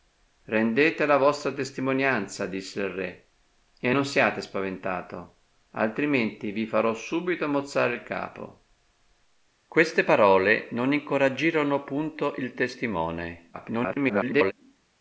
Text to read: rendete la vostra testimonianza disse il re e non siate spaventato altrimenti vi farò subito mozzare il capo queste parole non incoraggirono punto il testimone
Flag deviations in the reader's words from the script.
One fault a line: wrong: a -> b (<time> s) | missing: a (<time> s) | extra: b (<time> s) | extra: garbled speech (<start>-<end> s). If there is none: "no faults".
extra: garbled speech (13.5-14.5 s)